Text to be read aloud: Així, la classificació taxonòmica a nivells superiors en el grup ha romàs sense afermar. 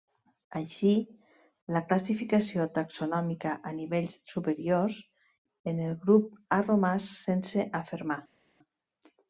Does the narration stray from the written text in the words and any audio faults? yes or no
no